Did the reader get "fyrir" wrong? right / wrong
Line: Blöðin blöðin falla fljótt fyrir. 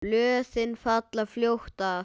wrong